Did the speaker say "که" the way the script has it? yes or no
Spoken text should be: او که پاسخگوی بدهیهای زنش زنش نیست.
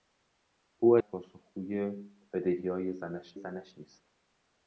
yes